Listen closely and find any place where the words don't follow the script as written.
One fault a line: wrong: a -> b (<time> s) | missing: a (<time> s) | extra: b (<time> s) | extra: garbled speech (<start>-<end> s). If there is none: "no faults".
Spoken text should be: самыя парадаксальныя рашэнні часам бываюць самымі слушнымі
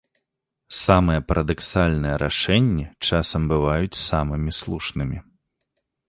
no faults